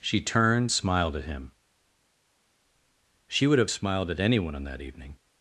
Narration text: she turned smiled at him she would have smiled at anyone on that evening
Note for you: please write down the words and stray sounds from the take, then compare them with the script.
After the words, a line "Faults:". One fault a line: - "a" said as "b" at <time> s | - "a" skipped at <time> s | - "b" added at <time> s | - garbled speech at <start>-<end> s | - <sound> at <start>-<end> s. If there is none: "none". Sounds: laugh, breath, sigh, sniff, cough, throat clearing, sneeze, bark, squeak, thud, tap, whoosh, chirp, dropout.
she turned smiled at him she would have smiled at anyone on that evening
Faults:
none